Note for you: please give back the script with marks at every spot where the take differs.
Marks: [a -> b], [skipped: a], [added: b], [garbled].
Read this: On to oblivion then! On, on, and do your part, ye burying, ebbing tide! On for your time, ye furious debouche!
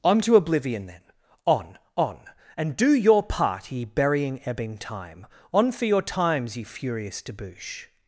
On to oblivion then! On, on, and do your part, ye burying, ebbing [tide! -> time] On for your [time, -> times] ye furious debouche!